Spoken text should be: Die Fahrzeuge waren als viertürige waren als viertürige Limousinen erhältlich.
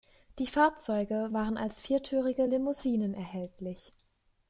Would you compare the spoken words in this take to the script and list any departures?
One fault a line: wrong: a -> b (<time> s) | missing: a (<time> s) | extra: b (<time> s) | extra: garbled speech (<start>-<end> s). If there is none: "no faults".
missing: waren als viertürige (2.5 s)